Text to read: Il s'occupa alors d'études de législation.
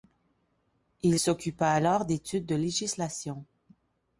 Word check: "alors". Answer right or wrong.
right